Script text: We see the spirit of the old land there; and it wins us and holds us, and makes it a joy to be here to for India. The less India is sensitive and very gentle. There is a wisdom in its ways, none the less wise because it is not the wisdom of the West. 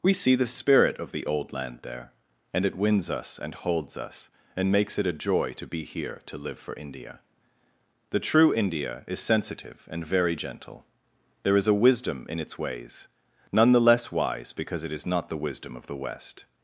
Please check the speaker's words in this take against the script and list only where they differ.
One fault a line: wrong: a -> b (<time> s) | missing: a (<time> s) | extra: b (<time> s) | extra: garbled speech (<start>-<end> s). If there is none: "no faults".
extra: live (6.4 s)
wrong: less -> true (8.2 s)